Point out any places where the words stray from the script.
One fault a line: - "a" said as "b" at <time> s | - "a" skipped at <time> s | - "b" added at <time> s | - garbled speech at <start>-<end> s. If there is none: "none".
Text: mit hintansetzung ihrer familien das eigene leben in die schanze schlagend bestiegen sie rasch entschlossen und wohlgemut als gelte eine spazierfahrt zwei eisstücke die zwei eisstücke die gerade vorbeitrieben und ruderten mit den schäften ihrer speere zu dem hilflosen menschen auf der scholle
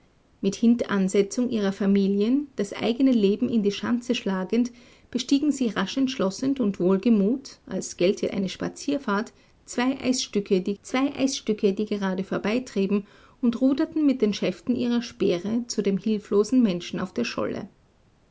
none